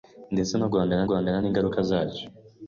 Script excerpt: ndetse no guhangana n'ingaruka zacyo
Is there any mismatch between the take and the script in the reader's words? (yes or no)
yes